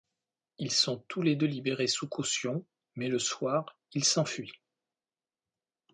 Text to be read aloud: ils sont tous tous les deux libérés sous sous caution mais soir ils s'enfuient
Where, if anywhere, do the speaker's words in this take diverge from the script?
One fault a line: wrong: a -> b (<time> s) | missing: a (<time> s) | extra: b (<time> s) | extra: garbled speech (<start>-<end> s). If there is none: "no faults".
missing: tous (1.2 s)
missing: sous (2.1 s)
extra: le (3.1 s)